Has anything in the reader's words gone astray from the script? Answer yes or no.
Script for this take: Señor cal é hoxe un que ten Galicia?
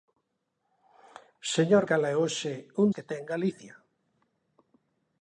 no